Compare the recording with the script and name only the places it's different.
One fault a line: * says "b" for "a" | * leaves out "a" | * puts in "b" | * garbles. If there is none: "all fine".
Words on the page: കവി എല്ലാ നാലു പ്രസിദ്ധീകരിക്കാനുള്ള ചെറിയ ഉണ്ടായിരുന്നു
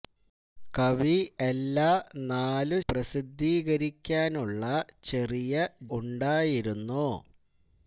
all fine